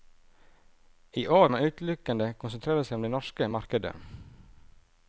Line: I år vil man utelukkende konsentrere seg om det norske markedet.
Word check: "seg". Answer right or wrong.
right